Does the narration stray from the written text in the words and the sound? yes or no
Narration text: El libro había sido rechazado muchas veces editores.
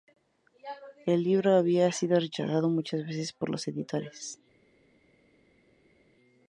yes